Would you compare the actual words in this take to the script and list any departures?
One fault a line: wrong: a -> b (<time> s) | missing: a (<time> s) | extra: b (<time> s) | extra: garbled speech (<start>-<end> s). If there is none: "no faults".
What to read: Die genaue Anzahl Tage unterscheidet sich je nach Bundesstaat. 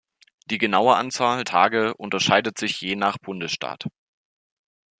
no faults